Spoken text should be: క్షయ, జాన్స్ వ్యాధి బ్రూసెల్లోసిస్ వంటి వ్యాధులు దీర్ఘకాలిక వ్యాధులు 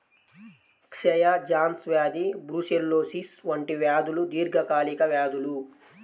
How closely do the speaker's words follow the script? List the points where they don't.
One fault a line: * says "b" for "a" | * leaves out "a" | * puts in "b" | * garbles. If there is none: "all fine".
all fine